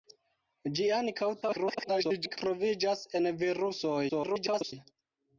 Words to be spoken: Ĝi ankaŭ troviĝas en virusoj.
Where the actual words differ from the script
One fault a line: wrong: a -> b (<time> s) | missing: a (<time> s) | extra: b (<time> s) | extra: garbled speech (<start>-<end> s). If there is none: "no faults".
extra: garbled speech (1.4-2.4 s)
extra: garbled speech (4.1-4.7 s)